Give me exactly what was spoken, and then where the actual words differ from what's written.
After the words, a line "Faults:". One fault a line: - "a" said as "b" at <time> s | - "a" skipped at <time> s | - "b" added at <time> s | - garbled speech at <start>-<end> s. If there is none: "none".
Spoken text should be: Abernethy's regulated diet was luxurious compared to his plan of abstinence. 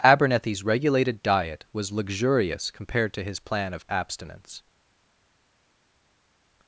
Abernethy's regulated diet was luxurious compared to his plan of abstinence.
Faults:
none